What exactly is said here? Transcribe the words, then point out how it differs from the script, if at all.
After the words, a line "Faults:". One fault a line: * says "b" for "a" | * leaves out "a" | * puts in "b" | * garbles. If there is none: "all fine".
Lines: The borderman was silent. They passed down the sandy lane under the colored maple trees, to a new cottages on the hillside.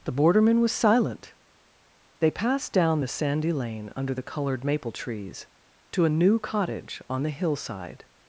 The borderman was silent. They passed down the sandy lane under the colored maple trees, to a new cottage on the hillside.
Faults:
* says "cottage" for "cottages"